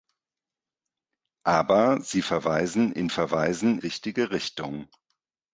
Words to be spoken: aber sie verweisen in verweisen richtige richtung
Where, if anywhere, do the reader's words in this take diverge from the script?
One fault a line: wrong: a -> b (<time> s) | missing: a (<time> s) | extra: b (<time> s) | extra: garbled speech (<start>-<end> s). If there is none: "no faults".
no faults